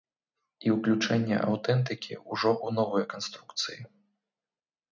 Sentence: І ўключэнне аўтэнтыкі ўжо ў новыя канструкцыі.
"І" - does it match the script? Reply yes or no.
yes